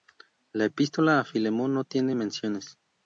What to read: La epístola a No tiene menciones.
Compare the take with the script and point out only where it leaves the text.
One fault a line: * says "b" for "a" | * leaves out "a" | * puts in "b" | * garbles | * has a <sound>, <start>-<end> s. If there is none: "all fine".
* puts in "Filemón"